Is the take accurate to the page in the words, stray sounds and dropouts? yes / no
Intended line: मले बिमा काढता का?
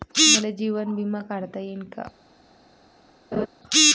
no